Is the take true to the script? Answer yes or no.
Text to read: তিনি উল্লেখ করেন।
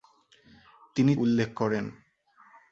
yes